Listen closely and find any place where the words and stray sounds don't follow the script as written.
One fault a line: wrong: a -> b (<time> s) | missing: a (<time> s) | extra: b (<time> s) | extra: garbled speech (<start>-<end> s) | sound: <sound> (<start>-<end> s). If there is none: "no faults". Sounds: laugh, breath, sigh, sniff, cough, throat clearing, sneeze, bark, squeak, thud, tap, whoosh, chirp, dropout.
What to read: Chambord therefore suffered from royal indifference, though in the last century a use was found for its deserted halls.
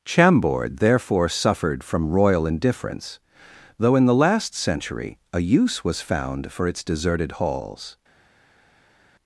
no faults